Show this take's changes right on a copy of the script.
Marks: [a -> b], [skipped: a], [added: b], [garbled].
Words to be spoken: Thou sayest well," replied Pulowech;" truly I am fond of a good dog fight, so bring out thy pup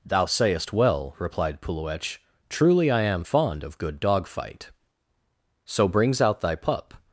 Thou sayest well," replied Pulowech;" truly I am fond of [skipped: a] good dog fight, so [bring -> brings] out thy pup